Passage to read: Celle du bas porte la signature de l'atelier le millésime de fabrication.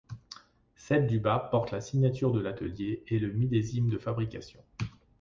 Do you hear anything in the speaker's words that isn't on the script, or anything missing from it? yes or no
yes